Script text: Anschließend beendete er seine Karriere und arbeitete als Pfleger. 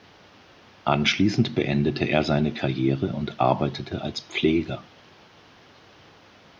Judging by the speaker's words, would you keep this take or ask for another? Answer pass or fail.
pass